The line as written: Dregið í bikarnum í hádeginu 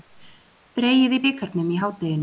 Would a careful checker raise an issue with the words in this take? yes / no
no